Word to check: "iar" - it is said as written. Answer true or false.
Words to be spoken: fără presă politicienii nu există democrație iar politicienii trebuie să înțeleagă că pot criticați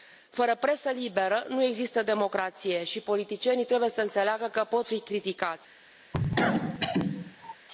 false